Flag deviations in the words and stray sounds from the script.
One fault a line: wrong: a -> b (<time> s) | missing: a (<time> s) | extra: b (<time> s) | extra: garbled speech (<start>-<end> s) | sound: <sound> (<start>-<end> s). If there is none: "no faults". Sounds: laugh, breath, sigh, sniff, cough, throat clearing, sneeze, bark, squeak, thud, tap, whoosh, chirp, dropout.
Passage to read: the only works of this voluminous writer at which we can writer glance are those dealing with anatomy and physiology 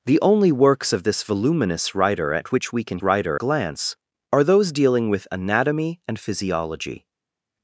no faults